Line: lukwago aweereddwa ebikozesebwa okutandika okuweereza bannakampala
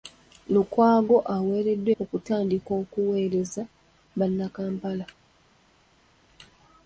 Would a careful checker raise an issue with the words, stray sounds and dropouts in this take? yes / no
yes